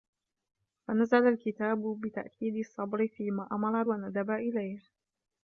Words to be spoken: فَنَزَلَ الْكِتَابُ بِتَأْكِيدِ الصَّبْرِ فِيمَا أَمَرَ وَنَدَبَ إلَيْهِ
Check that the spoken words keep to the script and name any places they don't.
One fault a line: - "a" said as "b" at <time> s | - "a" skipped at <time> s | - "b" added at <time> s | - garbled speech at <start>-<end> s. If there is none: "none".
none